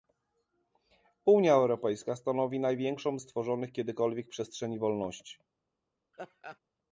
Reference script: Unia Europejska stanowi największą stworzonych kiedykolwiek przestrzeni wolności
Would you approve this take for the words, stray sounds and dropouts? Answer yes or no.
no